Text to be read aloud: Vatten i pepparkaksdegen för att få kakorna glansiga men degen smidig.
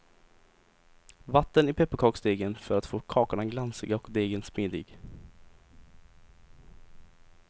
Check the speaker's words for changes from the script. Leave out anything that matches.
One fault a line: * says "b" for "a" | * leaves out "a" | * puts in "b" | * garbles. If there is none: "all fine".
* says "och" for "men"